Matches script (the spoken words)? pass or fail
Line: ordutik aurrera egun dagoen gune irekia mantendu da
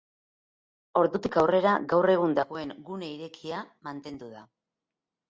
fail